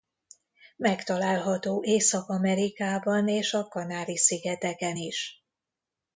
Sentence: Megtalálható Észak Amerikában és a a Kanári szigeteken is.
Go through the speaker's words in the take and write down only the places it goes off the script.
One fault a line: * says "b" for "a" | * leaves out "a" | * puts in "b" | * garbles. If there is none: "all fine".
* leaves out "a"